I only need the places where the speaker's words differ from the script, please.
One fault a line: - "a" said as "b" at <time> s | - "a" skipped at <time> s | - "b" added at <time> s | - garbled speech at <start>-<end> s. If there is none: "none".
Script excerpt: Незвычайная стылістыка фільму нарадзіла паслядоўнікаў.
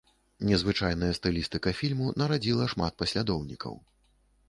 - "шмат" added at 2.8 s